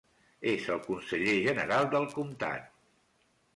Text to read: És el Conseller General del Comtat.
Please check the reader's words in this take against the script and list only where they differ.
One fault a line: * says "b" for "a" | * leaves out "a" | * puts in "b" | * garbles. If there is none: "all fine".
all fine